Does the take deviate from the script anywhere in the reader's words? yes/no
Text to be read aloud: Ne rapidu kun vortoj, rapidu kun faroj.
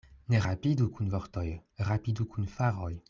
no